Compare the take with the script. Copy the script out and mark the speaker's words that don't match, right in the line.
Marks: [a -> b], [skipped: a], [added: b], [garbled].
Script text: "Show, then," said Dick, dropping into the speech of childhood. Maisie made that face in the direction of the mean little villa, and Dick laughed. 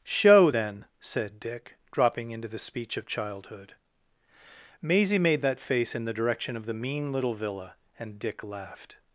"Show, then," said Dick, dropping into the speech of childhood. Maisie made that face in the direction of the mean little villa, and Dick laughed.